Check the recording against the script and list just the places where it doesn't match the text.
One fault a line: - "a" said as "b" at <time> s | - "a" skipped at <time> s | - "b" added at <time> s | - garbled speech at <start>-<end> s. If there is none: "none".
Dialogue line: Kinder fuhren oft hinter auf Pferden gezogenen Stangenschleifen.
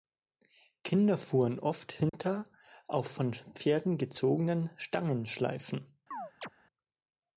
- "von" added at 3.1 s